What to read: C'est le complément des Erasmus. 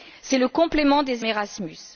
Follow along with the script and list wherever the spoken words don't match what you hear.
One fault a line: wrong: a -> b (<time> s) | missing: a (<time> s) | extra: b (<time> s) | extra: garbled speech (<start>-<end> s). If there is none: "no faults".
no faults